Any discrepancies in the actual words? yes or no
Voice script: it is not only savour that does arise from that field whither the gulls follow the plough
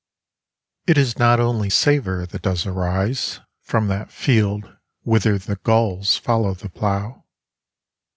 no